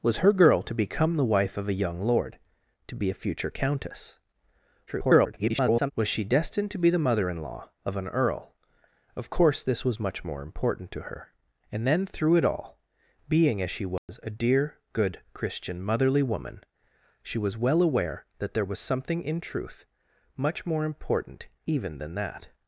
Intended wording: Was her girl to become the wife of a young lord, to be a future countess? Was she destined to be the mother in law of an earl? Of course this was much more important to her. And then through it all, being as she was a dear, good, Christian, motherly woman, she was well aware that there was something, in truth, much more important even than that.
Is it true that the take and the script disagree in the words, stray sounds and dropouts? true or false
true